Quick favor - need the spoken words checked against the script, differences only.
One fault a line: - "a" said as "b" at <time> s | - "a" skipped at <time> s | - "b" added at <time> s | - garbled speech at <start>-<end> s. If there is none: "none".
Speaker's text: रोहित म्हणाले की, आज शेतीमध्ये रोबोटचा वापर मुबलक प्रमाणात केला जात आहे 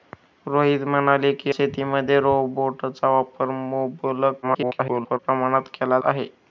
- "आज" skipped at 1.5 s
- garbled speech at 4.4-5.2 s
- "जात" skipped at 6.0 s